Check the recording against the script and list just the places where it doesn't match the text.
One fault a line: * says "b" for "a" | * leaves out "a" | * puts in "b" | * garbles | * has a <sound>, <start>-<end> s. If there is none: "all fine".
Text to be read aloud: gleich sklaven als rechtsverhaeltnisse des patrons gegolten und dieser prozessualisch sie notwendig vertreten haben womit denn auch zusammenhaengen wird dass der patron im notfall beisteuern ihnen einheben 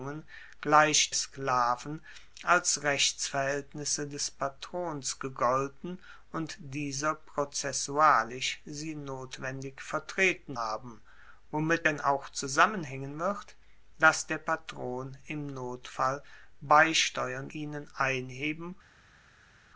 all fine